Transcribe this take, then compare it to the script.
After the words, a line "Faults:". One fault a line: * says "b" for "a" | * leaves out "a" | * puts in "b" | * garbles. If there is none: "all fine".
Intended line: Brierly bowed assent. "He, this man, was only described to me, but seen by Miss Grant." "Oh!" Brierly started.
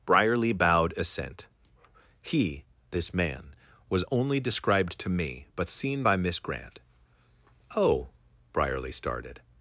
Brierly bowed assent. "He, this man, was only described to me, but seen by Miss Grant." "Oh!" Brierly started.
Faults:
all fine